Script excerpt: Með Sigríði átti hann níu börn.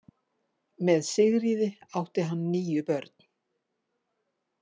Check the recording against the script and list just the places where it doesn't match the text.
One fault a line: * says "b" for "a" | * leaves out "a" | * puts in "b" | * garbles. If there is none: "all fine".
all fine